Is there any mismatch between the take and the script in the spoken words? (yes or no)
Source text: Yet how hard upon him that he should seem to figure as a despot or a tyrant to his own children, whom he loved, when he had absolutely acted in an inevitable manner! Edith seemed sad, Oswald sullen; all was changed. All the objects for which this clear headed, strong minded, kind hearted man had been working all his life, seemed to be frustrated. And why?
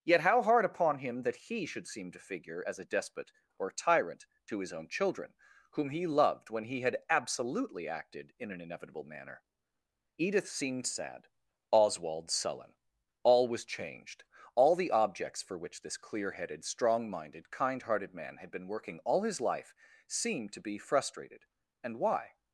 yes